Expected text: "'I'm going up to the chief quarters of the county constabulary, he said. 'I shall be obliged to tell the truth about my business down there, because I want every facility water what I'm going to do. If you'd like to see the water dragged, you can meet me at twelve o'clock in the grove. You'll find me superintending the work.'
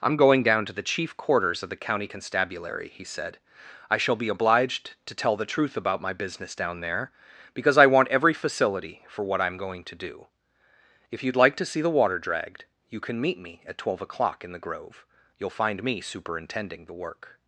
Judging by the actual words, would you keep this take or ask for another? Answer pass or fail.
fail